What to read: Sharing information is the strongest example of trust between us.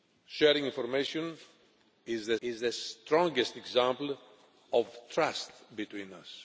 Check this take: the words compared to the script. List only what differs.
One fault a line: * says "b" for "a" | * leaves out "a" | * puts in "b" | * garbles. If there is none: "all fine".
* puts in "is the"